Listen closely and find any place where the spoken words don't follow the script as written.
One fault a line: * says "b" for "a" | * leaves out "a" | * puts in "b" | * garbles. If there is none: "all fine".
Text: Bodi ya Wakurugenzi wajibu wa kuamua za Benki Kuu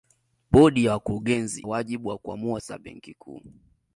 all fine